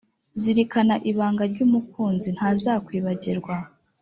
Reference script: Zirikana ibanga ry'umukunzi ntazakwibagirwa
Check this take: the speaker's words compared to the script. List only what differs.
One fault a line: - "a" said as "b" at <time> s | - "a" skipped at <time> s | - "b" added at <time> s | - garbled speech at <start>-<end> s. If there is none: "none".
none